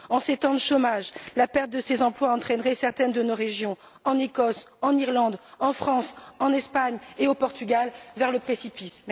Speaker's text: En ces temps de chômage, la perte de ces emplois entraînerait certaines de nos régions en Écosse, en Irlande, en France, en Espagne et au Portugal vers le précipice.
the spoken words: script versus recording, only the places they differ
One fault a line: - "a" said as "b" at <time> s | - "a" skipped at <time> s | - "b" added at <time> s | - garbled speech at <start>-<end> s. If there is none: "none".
none